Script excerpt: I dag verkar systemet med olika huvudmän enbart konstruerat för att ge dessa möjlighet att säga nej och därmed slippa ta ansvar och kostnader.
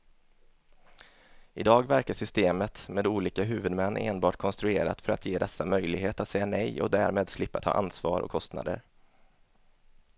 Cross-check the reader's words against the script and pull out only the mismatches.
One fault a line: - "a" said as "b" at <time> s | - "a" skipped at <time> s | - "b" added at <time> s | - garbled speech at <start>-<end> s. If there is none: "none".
none